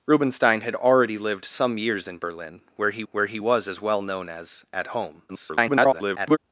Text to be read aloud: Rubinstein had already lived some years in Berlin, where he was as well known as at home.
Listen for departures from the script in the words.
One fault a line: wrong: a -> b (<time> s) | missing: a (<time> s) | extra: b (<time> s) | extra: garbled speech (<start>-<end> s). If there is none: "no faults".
extra: where he (3.1 s)
extra: garbled speech (5.3-6.4 s)